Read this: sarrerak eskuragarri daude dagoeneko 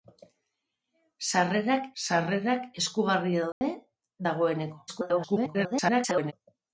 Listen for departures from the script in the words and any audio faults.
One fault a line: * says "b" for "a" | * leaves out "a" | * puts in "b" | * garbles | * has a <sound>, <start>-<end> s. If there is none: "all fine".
* puts in "sarrerak"
* has a dropout, 3.5-3.6 s
* garbles